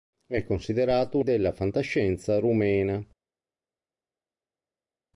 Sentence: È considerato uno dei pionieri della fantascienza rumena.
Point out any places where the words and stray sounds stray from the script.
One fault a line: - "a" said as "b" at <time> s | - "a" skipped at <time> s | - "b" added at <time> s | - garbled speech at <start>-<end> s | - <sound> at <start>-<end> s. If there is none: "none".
- "uno dei pionieri" skipped at 1.2 s